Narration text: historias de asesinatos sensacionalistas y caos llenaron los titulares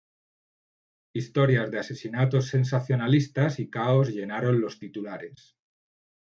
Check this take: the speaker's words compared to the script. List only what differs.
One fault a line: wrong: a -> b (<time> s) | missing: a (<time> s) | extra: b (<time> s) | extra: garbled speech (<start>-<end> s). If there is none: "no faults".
no faults